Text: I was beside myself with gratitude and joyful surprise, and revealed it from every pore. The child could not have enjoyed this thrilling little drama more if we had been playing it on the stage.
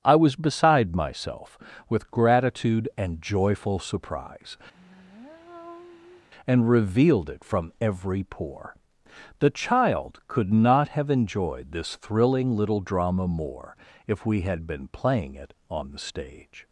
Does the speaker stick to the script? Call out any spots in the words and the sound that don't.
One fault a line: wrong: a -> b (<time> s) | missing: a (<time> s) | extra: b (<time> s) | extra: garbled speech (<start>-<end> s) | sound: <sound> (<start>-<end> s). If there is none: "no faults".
sound: sigh (4.7-6.3 s)